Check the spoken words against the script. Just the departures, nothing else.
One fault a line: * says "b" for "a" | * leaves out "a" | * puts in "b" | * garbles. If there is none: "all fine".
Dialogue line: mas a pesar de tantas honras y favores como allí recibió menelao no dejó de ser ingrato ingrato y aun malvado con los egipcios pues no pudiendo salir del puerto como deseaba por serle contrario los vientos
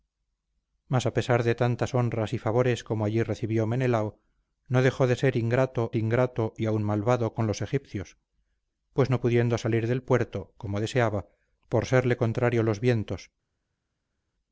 all fine